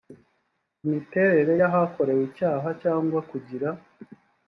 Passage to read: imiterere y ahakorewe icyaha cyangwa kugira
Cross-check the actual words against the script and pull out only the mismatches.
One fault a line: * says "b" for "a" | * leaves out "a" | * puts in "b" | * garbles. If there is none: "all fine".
all fine